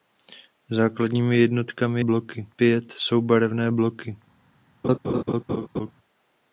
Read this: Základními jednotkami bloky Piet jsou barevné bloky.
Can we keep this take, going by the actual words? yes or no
yes